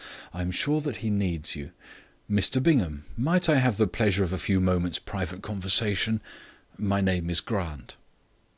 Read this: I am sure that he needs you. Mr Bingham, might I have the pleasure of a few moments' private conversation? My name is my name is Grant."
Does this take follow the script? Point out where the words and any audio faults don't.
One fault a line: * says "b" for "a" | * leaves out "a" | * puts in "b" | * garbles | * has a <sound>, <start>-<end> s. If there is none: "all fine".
* leaves out "my name is"